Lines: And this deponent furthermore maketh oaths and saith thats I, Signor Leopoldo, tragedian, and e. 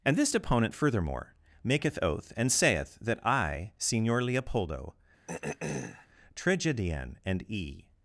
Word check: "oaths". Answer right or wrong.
wrong